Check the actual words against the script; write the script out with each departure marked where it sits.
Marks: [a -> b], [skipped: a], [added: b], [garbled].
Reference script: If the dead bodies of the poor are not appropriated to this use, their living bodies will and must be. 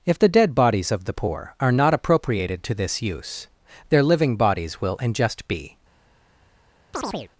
If the dead bodies of the poor are not appropriated to this use, their living bodies will and [must -> just] be.